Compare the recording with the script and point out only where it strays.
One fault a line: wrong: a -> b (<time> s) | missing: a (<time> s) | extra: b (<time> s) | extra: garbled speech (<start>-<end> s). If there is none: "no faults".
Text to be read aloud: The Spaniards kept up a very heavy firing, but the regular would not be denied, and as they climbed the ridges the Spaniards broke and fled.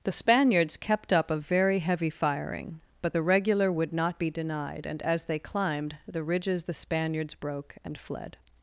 no faults